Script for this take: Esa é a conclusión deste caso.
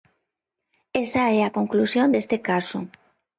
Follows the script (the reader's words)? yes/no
yes